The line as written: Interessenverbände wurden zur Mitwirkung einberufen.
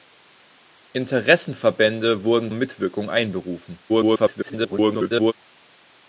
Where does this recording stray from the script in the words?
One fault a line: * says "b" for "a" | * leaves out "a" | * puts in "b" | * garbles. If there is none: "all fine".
* leaves out "zur"
* garbles